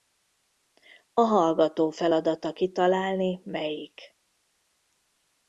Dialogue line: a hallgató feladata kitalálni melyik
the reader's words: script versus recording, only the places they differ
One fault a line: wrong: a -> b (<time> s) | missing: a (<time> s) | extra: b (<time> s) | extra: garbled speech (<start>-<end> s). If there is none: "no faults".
no faults